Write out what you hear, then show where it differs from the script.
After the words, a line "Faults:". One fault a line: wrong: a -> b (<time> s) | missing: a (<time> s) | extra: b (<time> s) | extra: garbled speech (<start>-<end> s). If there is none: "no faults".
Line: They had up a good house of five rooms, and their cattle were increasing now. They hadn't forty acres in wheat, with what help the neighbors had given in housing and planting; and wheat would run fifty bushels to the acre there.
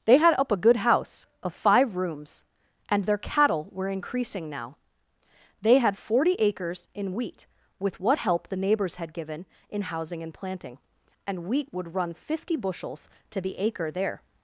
They had up a good house of five rooms, and their cattle were increasing now. They had forty acres in wheat, with what help the neighbors had given in housing and planting; and wheat would run fifty bushels to the acre there.
Faults:
wrong: hadn't -> had (5.8 s)